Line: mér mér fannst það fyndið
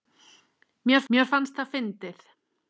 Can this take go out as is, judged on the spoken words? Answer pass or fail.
pass